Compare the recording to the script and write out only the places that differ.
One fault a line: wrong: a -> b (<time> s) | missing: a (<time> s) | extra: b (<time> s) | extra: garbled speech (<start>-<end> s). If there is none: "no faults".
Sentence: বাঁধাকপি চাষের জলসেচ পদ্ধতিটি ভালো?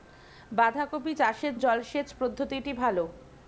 no faults